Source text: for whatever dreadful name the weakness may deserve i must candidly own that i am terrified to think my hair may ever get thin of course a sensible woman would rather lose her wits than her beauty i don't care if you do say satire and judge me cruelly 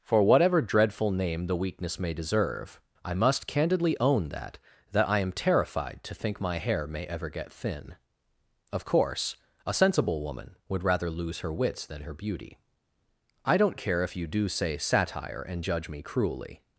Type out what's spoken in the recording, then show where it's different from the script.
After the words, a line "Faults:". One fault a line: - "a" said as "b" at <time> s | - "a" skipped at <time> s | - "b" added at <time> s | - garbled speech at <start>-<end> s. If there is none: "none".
for whatever dreadful name the weakness may deserve i must candidly own that that i am terrified to think my hair may ever get thin of course a sensible woman would rather lose her wits than her beauty i don't care if you do say satire and judge me cruelly
Faults:
- "that" added at 4.9 s